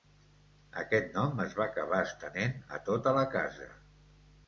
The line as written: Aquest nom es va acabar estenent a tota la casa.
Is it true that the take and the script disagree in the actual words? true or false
false